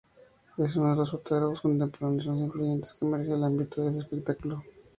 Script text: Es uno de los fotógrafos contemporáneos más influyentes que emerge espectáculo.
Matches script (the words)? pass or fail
fail